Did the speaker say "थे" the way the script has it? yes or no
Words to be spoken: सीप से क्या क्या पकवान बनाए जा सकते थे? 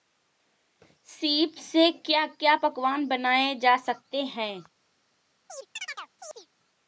no